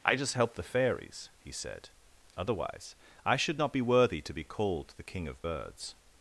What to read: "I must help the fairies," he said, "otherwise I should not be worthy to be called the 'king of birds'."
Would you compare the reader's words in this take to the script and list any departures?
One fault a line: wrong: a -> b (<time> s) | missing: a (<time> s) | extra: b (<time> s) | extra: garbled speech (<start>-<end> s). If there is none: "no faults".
wrong: must -> just (0.1 s)